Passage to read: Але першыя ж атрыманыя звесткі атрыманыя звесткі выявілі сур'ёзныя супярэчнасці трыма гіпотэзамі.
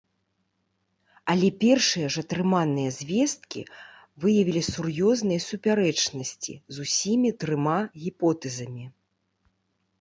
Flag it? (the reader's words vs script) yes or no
yes